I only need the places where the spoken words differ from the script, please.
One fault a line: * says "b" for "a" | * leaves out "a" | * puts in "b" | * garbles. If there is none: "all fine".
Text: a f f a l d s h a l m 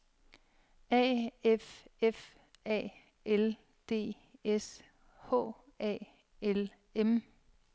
all fine